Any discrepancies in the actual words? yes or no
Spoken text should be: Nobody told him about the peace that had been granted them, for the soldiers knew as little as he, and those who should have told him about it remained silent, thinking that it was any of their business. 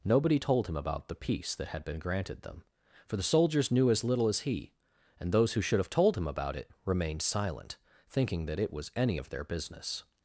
no